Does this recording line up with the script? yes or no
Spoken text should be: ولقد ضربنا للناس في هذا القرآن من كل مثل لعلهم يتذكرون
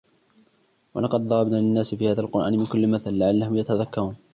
yes